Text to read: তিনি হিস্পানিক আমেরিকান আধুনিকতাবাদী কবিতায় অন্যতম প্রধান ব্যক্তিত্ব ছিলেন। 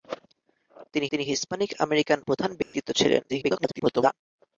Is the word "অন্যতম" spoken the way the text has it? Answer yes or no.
no